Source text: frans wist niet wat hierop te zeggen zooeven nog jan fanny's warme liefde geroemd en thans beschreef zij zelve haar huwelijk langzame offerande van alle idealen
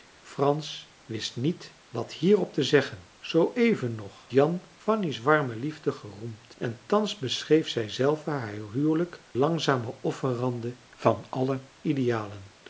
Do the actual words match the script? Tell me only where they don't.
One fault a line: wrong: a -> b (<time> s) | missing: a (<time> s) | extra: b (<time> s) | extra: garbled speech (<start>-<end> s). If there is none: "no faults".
no faults